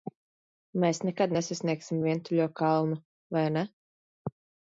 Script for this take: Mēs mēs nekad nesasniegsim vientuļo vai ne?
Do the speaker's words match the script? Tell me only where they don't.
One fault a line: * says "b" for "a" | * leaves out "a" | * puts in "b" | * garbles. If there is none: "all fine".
* leaves out "mēs"
* puts in "kalnu"